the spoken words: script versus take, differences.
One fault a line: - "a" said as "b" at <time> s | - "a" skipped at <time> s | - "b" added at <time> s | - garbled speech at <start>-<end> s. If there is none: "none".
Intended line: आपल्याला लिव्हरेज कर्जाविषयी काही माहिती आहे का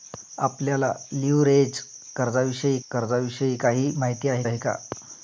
- "कर्जाविषयी" added at 2.9 s
- "आहे" added at 4.4 s